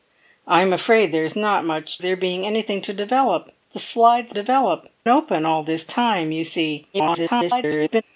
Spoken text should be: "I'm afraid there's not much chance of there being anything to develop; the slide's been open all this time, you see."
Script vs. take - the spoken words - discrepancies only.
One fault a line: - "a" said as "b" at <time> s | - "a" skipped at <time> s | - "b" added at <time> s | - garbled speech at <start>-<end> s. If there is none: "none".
- "chance of" skipped at 2.0 s
- "been" said as "develop" at 4.3 s
- garbled speech at 6.9-8.0 s